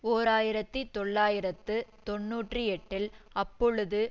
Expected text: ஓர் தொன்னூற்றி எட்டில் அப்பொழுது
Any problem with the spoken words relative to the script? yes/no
yes